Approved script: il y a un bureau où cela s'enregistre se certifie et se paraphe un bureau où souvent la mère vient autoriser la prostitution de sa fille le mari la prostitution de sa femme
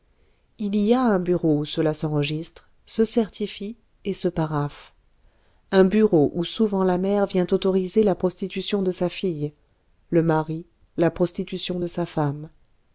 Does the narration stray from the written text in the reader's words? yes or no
no